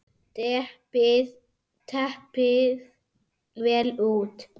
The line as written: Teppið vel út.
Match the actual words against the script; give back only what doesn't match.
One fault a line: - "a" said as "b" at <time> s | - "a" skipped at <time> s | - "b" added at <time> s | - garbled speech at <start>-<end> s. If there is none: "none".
none